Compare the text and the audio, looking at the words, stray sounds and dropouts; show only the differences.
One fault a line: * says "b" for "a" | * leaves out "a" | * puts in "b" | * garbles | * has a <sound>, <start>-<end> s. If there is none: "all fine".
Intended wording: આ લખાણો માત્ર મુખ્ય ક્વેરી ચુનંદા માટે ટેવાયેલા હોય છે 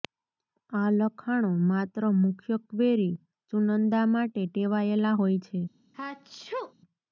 * has a sneeze, 5.9-6.7 s